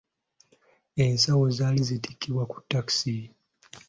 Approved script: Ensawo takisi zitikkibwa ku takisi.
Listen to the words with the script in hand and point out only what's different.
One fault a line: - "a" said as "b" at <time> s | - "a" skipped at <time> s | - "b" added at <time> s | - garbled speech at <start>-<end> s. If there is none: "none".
- "takisi" said as "zaali" at 1.6 s